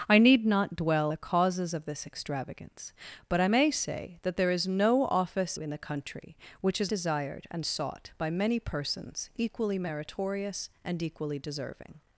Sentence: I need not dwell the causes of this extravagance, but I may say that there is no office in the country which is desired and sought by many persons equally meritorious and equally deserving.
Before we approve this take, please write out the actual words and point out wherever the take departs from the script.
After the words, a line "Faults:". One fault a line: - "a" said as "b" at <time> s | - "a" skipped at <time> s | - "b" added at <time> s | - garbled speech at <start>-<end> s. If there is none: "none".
I need not dwell the causes of this extravagance, but I may say that there is no office in the country which is desired and sought by many persons equally meritorious and equally deserving.
Faults:
none